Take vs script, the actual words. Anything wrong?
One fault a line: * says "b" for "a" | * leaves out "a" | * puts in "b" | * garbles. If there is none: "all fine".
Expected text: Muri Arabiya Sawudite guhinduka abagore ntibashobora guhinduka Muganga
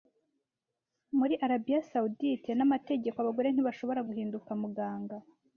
* says "n'amategeko" for "guhinduka"